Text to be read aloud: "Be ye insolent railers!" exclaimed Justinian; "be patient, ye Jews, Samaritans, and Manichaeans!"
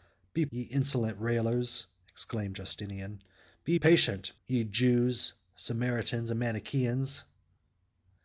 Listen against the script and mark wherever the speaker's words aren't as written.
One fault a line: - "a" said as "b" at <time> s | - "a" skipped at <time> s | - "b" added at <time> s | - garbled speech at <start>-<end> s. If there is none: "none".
none